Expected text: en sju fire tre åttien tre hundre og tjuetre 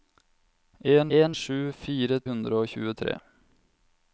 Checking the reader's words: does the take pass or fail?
fail